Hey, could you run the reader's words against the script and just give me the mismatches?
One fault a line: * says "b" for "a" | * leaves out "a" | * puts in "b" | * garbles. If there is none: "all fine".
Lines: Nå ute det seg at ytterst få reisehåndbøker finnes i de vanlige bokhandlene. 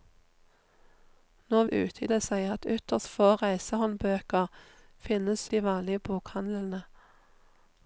all fine